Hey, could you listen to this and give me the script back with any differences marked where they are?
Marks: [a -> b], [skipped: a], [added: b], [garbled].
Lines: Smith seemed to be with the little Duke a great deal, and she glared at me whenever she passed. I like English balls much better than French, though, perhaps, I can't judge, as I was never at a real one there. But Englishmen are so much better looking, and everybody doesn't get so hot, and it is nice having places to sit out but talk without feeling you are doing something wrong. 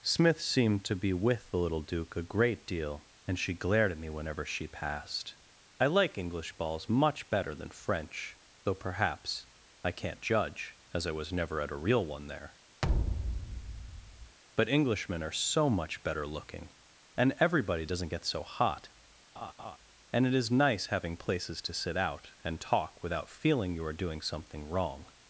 Smith seemed to be with the little Duke a great deal, and she glared at me whenever she passed. I like English balls much better than French, though, perhaps, I can't judge, as I was never at a real one there. But Englishmen are so much better looking, and everybody doesn't get so hot, and it is nice having places to sit out [but -> and] talk without feeling you are doing something wrong.